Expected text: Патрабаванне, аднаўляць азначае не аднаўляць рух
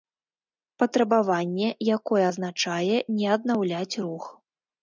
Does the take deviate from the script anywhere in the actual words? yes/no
yes